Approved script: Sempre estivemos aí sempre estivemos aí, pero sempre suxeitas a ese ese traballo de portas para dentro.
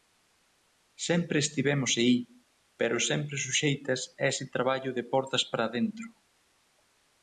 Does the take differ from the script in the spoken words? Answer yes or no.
yes